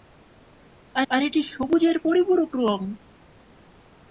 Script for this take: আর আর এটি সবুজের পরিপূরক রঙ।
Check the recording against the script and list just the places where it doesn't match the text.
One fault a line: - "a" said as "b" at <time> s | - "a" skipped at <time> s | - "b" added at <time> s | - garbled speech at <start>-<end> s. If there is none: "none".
none